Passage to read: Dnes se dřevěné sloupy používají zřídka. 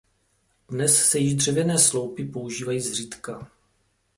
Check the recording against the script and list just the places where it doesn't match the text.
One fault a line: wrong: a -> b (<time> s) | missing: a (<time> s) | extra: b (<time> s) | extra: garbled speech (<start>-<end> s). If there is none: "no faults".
extra: již (1.2 s)